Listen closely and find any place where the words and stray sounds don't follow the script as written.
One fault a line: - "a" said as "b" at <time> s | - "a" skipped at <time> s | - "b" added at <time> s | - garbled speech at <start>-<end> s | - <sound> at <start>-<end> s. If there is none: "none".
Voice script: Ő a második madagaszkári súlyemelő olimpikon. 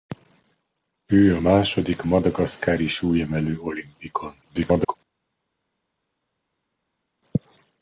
- garbled speech at 4.4-5.0 s